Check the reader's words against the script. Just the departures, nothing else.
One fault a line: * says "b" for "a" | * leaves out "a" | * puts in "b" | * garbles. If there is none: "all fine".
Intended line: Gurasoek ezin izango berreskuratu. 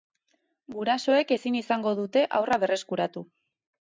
* puts in "dute haurra"